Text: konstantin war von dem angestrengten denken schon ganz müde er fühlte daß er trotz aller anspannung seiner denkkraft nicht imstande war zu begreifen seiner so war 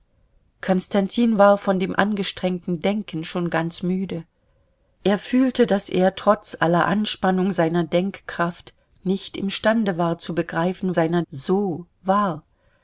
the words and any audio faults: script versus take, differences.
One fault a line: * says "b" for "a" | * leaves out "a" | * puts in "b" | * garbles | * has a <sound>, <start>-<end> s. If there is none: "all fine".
all fine